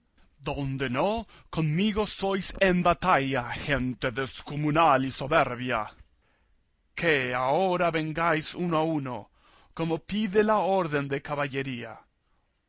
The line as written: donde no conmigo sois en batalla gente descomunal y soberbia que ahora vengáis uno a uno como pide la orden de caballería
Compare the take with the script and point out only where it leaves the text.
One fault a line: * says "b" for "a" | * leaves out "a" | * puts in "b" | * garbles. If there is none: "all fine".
all fine